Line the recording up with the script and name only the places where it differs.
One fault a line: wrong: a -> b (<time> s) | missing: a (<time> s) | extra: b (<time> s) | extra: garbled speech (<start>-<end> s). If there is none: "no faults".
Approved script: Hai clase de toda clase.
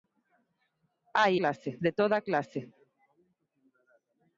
no faults